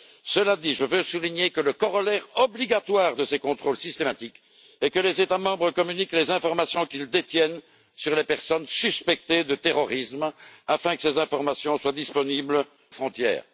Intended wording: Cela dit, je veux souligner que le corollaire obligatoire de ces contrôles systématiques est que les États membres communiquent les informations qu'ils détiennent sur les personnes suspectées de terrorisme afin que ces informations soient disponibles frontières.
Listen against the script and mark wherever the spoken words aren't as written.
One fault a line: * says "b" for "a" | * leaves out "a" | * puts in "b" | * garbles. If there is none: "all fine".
all fine